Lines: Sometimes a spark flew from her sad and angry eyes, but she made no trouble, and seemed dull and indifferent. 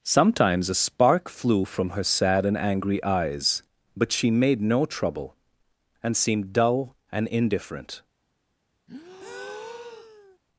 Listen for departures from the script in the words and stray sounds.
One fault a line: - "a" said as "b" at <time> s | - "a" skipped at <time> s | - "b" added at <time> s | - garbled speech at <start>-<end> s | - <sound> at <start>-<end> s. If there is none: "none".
- breath at 8.9-10.4 s